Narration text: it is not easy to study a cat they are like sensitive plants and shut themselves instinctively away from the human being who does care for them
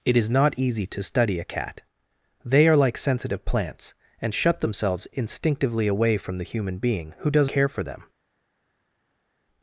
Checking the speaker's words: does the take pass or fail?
pass